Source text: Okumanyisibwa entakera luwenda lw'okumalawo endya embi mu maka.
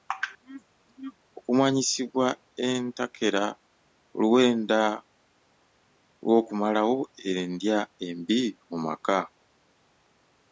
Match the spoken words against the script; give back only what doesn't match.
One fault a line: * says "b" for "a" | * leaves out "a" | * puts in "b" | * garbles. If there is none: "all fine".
all fine